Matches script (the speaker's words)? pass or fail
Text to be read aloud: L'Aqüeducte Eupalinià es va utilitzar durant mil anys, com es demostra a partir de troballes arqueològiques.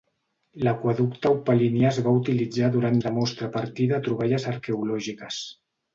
fail